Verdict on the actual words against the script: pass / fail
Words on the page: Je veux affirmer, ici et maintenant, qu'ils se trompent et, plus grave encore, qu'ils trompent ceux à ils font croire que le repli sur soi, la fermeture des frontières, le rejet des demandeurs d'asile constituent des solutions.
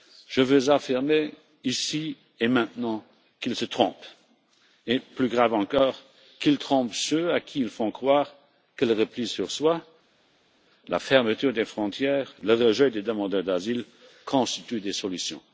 fail